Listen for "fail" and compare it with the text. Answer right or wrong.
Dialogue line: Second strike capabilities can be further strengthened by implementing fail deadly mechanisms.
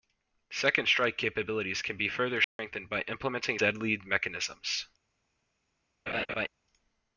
wrong